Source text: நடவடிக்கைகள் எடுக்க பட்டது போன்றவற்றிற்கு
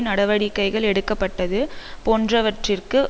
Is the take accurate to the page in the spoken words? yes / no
yes